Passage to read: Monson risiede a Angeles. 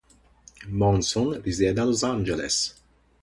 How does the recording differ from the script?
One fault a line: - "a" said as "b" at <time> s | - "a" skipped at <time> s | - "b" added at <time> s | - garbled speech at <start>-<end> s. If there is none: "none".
- "Los" added at 1.9 s